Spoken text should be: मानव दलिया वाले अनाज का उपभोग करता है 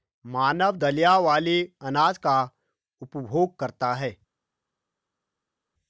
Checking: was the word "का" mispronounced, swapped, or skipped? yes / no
no